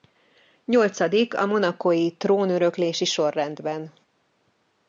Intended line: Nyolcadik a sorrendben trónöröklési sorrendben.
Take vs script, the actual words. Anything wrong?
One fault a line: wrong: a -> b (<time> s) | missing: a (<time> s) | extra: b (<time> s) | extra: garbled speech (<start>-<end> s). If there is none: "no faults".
wrong: sorrendben -> monacói (1.4 s)